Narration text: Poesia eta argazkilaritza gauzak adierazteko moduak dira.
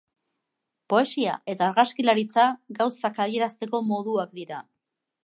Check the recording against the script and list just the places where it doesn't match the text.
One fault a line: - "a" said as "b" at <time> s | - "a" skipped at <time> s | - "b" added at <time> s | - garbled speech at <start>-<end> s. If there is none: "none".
none